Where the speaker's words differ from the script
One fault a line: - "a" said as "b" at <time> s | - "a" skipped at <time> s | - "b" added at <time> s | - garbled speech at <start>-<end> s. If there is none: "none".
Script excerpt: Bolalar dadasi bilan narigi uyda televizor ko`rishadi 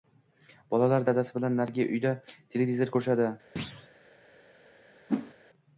none